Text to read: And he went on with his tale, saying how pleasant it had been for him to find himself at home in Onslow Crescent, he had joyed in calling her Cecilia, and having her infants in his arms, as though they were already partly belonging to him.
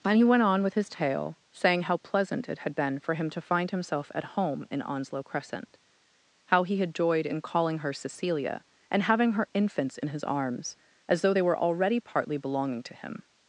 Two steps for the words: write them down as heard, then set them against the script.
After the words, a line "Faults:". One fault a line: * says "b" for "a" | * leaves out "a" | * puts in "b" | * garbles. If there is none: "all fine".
And he went on with his tale, saying how pleasant it had been for him to find himself at home in Onslow Crescent, how he had joyed in calling her Cecilia, and having her infants in his arms, as though they were already partly belonging to him.
Faults:
* puts in "how"